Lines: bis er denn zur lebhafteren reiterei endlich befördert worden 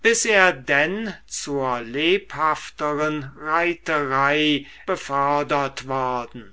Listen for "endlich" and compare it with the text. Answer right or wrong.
wrong